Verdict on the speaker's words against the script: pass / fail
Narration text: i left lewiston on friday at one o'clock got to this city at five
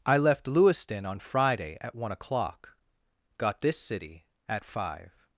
fail